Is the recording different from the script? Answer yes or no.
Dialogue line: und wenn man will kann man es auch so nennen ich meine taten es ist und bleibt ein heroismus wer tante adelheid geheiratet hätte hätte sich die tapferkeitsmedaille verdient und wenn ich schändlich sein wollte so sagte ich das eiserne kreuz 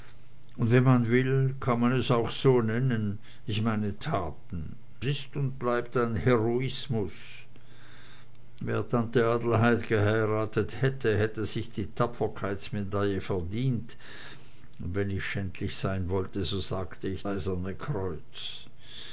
yes